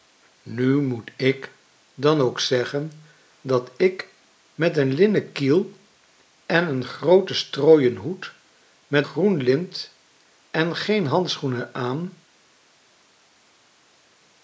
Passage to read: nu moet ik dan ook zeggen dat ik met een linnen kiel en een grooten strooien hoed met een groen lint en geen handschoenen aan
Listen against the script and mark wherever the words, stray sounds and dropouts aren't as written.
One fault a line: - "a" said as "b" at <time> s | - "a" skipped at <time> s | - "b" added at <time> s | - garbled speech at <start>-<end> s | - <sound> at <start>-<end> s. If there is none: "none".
- "een" skipped at 9.1 s